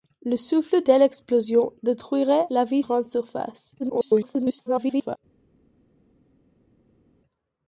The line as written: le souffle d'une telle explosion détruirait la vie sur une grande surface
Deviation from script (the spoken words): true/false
true